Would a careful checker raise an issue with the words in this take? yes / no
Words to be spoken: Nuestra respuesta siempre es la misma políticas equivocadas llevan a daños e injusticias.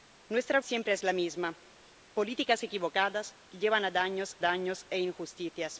yes